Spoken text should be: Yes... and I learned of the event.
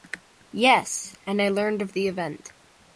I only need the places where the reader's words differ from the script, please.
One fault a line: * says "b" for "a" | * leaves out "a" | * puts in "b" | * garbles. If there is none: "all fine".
all fine